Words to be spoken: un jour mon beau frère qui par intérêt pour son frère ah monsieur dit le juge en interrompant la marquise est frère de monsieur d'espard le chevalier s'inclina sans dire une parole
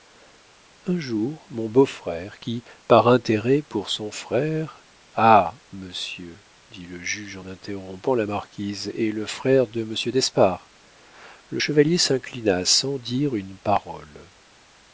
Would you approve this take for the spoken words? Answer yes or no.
no